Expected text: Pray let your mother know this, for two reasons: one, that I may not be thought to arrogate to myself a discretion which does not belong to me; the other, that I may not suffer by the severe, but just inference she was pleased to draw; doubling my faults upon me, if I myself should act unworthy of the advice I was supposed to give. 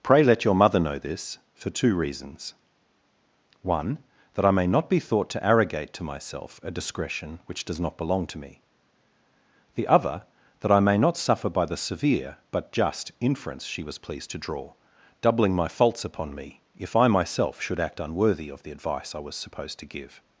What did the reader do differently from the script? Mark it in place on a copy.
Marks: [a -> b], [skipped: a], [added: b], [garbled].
Pray let your mother know this, for two reasons: one, that I may not be thought to arrogate to myself a discretion which does not belong to me; the other, that I may not suffer by the severe, but just inference she was pleased to draw; doubling my faults upon me, if I myself should act unworthy of the advice I was supposed to give.